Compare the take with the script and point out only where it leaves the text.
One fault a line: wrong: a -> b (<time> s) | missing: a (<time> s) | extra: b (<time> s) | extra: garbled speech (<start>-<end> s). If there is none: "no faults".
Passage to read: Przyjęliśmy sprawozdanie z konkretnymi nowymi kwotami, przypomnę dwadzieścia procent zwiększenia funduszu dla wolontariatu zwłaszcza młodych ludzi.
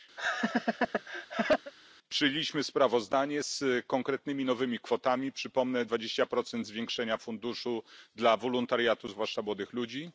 no faults